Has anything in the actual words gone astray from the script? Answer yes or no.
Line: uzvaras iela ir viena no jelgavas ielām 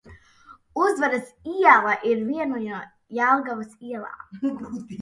no